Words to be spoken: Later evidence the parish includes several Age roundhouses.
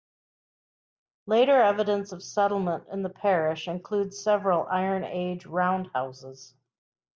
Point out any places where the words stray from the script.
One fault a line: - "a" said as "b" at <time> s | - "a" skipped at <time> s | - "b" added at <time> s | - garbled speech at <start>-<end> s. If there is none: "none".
- "of settlement in" added at 2.1 s
- "Iron" added at 4.7 s